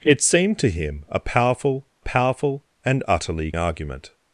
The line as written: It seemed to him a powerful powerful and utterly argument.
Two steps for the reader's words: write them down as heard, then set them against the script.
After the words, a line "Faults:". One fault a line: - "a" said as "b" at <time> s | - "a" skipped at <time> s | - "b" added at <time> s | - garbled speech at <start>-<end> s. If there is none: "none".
It seemed to him a powerful powerful and utterly argument.
Faults:
none